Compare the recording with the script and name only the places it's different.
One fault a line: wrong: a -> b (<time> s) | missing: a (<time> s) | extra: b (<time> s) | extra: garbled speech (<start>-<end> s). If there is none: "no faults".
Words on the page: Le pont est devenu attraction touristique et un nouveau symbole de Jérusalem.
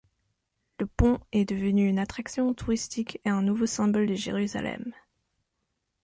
extra: une (1.9 s)